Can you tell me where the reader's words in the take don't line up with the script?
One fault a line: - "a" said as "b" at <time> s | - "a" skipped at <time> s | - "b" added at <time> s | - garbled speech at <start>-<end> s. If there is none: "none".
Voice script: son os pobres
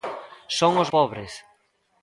none